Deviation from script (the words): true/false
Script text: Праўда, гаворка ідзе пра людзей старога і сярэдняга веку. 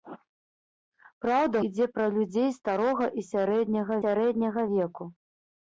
true